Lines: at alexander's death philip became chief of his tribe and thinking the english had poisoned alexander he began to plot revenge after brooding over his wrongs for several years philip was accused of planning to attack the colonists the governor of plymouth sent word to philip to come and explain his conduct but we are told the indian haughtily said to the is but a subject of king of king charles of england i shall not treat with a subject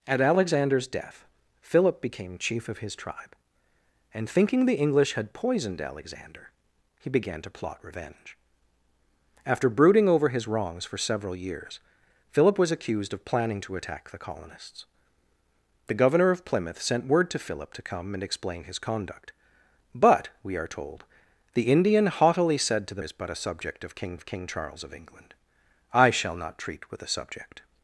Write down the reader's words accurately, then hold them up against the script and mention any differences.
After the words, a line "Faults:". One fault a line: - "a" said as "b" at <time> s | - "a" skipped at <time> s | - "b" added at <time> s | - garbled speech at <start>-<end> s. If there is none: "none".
at alexander's death philip became chief of his tribe and thinking the english had poisoned alexander he began to plot revenge after brooding over his wrongs for several years philip was accused of planning to attack the colonists the governor of plymouth sent word to philip to come and explain his conduct but we are told the indian haughtily said to the is but a subject of king of king charles of england i shall not treat with a subject
Faults:
none